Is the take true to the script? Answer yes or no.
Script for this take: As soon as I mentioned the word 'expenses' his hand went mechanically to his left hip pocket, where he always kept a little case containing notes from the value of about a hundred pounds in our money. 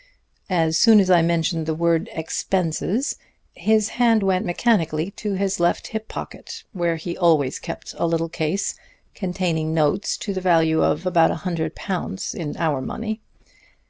no